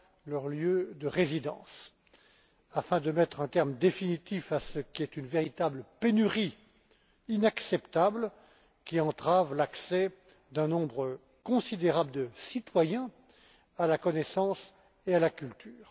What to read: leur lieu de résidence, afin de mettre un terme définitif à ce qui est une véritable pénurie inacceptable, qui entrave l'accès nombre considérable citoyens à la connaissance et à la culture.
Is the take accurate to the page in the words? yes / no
no